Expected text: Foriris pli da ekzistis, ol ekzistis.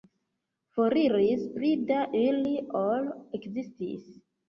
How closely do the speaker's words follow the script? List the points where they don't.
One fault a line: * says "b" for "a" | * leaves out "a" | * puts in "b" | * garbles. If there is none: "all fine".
* says "ili" for "ekzistis"